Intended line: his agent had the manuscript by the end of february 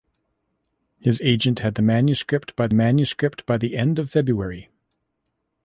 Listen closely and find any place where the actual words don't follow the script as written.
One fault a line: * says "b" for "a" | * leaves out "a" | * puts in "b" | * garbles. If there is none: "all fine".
* puts in "manuscript by"